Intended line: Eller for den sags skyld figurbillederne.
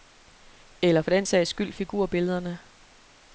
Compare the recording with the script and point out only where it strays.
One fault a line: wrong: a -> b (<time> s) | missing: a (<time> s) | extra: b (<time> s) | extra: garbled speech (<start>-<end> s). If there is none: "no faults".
no faults